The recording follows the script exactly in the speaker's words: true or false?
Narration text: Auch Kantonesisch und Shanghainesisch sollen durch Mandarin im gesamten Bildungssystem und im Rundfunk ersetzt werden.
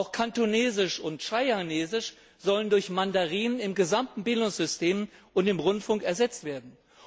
true